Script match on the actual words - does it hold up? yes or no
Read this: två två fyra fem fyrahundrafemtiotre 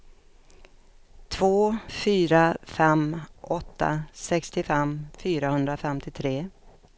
no